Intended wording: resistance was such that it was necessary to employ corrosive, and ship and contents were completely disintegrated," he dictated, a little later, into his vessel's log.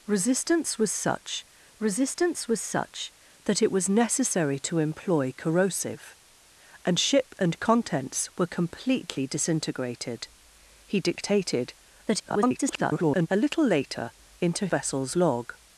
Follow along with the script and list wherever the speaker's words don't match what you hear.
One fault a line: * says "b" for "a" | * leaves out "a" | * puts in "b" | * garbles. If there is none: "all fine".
* puts in "resistance was such"
* garbles
* leaves out "his"